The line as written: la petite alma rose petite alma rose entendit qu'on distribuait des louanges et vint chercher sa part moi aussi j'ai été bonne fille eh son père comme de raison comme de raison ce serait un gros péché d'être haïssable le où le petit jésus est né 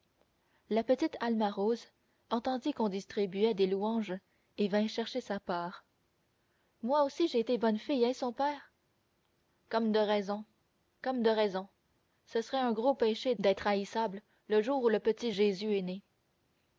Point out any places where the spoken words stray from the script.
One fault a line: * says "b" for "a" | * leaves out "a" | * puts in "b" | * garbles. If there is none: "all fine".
* leaves out "petite alma rose"
* puts in "jour"